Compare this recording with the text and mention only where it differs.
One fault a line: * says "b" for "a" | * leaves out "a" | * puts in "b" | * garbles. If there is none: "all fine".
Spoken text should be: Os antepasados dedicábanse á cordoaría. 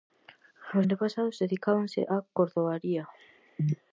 all fine